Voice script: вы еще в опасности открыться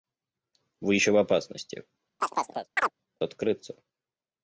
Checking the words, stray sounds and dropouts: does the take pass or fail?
fail